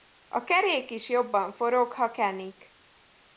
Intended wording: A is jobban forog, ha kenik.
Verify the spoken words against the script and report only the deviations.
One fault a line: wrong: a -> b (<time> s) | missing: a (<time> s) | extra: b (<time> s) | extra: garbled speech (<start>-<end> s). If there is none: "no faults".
extra: kerék (0.4 s)